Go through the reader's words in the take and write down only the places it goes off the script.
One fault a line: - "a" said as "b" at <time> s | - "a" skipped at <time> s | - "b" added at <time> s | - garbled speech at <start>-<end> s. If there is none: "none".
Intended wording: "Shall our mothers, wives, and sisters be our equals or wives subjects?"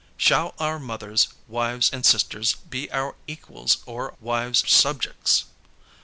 none